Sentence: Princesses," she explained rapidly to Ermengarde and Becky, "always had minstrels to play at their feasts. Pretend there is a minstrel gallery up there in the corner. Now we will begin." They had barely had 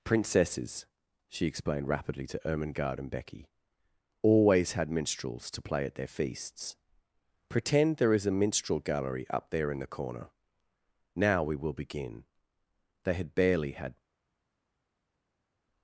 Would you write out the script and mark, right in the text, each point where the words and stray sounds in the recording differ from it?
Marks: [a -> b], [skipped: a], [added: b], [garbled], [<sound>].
Princesses," she explained rapidly to Ermengarde and Becky, "always had minstrels to play at their feasts. Pretend there is a minstrel gallery up there in the corner. Now we will begin." They had barely had